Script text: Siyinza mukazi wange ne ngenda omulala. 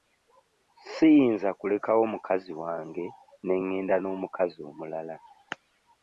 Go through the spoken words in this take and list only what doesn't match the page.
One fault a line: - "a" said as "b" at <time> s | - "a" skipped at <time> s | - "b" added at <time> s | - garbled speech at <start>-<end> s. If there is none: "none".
- "kulekawo" added at 1.6 s
- "n'omukazi" added at 4.0 s